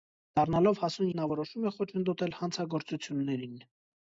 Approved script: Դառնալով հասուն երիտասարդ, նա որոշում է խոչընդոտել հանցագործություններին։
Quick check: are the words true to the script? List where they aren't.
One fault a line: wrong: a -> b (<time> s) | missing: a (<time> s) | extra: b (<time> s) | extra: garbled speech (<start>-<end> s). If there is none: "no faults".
missing: երիտասարդ (1.1 s)